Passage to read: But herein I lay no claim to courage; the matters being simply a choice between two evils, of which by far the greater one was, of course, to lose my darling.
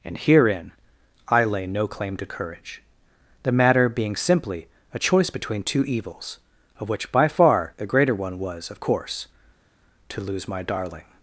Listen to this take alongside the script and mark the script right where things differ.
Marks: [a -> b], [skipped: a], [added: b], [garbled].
[But -> And] herein I lay no claim to courage; the [matters -> matter] being simply a choice between two evils, of which by far the greater one was, of course, to lose my darling.